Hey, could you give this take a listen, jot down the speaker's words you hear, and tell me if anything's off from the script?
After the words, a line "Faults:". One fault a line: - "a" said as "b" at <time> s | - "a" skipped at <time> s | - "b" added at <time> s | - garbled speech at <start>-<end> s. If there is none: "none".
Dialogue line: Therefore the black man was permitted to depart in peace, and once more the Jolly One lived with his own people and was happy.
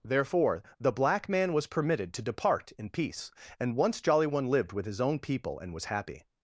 Therefore the black man was permitted to depart in peace, and once Jolly One lived with his own people and was happy.
Faults:
- "more the" skipped at 4.0 s